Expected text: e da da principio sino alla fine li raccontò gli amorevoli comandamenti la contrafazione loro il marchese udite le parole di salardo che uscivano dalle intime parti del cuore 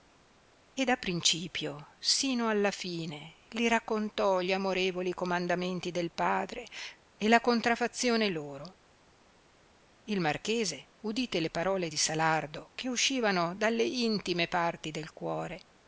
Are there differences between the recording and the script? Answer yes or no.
yes